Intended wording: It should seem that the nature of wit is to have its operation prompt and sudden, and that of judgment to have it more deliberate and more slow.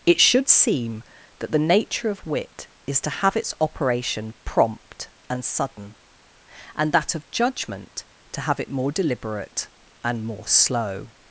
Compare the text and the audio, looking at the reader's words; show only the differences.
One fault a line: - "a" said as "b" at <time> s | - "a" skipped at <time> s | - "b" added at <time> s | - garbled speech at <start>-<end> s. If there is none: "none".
none